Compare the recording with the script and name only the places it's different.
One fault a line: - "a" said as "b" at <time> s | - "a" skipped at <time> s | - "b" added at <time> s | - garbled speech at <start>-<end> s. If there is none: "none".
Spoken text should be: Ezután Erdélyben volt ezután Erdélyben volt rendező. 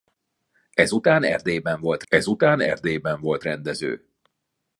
none